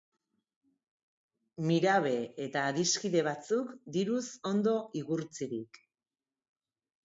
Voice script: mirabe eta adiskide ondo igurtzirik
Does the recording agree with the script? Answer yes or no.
no